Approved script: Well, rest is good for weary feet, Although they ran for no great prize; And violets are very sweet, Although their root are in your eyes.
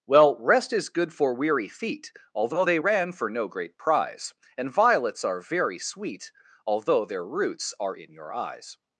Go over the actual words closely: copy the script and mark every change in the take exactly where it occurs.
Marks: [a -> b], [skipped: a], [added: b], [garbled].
Well, rest is good for weary feet, Although they ran for no great prize; And violets are very sweet, Although their [root -> roots] are in your eyes.